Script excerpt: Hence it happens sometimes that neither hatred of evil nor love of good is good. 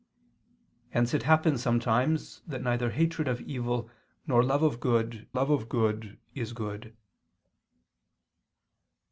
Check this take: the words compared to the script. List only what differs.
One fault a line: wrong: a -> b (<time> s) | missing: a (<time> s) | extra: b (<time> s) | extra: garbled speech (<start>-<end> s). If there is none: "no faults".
extra: love of good (5.3 s)